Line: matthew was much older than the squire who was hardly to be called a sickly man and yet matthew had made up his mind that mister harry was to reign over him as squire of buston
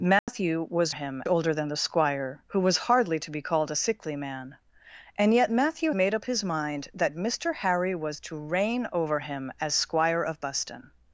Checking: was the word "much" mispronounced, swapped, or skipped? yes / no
yes